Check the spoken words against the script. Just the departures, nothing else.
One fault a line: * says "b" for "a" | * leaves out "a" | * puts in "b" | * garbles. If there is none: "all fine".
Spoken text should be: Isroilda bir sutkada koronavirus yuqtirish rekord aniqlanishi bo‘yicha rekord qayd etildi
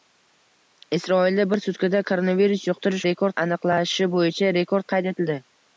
all fine